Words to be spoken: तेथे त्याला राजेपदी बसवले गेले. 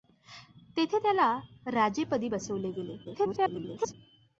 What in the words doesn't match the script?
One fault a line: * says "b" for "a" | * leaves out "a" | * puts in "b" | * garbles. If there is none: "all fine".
* garbles